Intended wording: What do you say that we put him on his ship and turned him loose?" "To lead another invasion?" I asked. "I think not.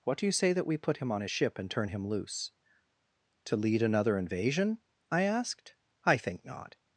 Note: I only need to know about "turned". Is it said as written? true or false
false